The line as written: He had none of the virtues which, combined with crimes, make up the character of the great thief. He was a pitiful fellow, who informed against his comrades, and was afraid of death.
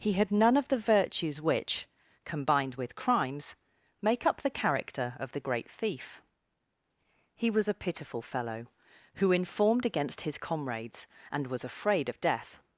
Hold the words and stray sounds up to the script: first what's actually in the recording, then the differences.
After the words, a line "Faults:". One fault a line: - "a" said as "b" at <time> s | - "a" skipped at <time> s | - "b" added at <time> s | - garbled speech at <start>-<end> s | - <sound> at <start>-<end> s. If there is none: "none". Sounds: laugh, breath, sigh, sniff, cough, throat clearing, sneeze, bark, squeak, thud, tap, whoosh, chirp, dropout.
He had none of the virtues which, combined with crimes, make up the character of the great thief. He was a pitiful fellow, who informed against his comrades, and was afraid of death.
Faults:
none